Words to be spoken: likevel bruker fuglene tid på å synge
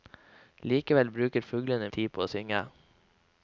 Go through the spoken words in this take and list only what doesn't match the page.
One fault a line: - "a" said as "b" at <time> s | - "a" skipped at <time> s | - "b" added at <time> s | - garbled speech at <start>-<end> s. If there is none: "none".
none